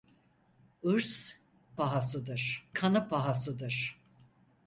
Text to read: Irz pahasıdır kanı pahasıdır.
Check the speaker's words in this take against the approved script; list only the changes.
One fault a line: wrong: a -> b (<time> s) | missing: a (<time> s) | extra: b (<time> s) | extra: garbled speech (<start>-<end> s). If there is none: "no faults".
no faults